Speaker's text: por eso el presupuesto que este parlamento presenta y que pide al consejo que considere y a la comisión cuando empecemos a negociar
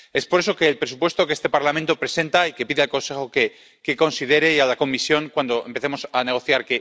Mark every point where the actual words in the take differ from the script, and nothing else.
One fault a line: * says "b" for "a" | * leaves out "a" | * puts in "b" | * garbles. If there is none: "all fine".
all fine